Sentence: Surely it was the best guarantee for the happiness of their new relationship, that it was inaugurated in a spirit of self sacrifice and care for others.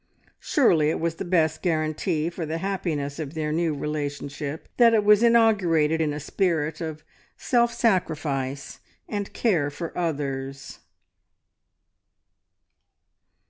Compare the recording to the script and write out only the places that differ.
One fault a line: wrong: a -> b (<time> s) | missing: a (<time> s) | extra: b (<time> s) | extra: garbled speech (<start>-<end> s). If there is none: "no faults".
no faults